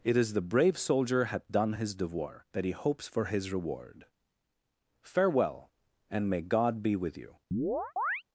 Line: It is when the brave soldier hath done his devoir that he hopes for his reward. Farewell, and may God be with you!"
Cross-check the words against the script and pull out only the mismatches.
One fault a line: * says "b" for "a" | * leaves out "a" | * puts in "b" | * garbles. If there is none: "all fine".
* leaves out "when"